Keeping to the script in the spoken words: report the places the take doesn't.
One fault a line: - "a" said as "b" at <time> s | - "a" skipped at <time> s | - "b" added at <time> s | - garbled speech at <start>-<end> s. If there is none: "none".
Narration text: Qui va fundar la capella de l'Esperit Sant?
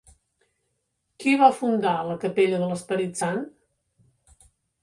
none